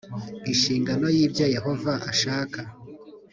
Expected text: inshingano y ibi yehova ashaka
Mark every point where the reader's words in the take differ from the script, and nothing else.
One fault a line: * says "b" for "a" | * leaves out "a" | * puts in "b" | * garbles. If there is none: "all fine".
* says "ibyo" for "ibi"